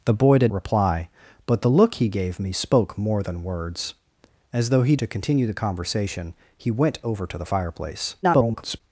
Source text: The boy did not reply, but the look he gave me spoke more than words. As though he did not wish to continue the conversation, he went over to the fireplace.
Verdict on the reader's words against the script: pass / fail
fail